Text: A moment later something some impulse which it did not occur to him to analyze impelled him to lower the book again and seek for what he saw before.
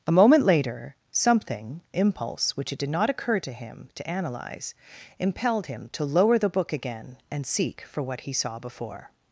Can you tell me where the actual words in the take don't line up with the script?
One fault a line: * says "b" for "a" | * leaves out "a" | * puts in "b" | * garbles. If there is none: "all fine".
* leaves out "some"